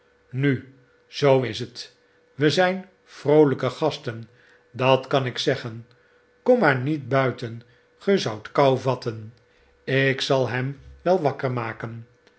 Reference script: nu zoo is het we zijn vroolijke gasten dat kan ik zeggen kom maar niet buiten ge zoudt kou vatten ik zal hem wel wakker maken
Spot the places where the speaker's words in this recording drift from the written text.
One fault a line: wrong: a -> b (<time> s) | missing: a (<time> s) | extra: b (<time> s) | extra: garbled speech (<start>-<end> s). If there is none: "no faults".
no faults